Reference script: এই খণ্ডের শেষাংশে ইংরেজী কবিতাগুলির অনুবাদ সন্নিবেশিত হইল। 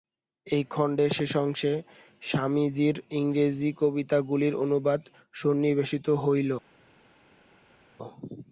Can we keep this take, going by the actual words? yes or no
no